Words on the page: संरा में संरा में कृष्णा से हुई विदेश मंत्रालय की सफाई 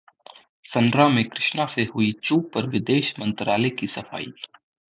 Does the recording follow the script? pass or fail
fail